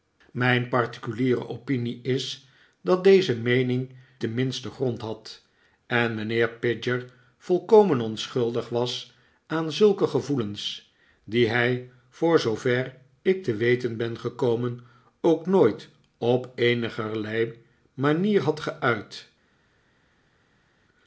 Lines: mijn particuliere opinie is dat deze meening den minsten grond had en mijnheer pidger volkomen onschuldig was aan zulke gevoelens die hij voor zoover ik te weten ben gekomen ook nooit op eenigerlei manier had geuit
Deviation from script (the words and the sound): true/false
false